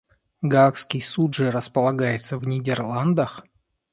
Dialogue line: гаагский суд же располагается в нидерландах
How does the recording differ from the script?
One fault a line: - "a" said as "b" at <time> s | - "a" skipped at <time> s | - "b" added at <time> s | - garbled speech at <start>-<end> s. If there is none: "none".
none